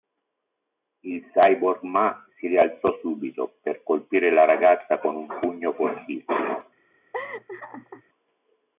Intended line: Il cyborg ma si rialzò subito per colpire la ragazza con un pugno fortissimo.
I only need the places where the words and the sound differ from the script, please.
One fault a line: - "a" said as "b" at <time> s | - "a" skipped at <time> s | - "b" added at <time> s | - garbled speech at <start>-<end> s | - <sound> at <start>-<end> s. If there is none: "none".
- laugh at 7.1-8.0 s